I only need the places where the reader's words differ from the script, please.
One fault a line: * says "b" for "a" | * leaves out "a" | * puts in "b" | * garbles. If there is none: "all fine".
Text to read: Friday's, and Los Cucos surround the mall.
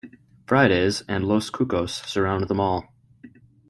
all fine